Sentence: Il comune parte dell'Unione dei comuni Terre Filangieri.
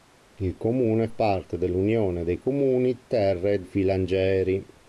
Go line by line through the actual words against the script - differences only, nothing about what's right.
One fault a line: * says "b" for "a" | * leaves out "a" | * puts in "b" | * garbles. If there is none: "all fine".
all fine